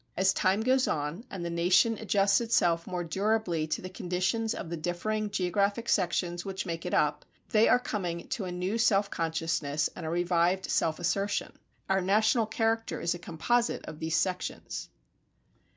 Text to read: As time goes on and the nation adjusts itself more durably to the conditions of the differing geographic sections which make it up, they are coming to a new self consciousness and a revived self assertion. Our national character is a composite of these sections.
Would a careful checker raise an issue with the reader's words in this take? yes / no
no